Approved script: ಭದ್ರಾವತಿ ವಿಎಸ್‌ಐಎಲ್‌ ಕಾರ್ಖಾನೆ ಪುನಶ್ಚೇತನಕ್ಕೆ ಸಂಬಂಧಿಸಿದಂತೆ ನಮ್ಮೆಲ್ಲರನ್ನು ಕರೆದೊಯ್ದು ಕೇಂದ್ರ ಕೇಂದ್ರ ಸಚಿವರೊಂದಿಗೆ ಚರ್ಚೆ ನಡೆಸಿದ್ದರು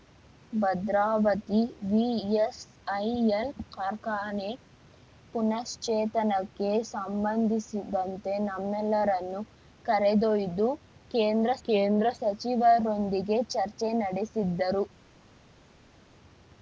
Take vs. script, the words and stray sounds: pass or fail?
pass